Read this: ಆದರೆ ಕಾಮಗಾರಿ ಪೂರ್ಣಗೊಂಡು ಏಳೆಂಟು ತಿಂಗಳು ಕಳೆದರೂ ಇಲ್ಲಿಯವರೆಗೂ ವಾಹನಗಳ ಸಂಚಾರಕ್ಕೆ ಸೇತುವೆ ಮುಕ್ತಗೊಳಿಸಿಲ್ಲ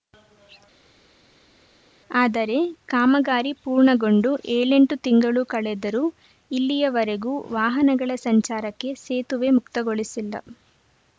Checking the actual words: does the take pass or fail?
pass